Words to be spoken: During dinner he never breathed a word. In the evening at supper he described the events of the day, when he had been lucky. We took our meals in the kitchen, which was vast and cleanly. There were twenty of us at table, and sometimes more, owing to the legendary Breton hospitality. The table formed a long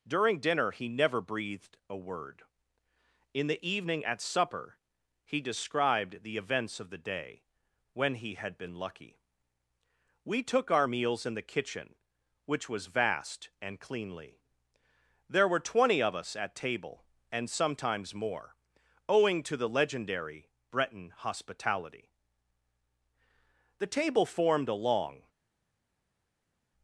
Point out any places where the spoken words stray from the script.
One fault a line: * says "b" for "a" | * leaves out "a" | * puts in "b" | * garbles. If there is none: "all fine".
all fine